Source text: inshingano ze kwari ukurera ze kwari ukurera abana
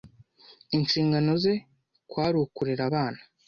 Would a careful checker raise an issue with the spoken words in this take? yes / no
yes